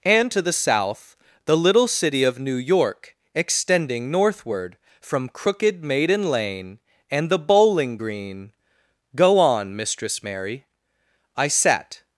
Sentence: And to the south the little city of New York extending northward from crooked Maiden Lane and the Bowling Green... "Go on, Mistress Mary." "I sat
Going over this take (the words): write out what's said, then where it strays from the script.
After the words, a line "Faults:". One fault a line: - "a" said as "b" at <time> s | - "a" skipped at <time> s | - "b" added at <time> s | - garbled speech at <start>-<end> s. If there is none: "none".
And to the south the little city of New York extending northward from crooked Maiden Lane and the Bowling Green... "Go on, Mistress Mary." "I sat
Faults:
none